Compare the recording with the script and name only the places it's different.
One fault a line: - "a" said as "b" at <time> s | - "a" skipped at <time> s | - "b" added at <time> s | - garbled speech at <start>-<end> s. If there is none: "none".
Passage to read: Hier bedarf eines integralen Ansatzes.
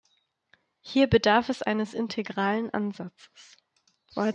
- "es" added at 1.5 s